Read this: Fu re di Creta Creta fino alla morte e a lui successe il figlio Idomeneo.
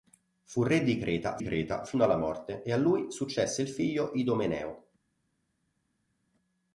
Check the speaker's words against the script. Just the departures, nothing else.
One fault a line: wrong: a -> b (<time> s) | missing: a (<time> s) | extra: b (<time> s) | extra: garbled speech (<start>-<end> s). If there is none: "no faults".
no faults